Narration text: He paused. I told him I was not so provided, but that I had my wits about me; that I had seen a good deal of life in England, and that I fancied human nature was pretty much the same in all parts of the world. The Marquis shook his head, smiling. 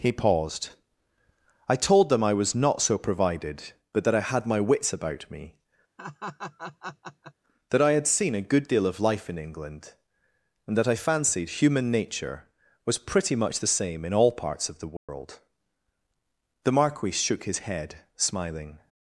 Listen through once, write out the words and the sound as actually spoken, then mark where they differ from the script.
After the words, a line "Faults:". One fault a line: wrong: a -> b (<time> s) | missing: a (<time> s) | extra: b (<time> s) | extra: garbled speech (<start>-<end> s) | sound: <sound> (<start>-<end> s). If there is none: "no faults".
He paused. I told them I was not so provided, but that I had my wits about me; that I had seen a good deal of life in England, and that I fancied human nature was pretty much the same in all parts of the world. The Marquis shook his head, smiling.
Faults:
wrong: him -> them (2.1 s)
sound: laugh (6.0-7.3 s)
sound: dropout (15.0-15.1 s)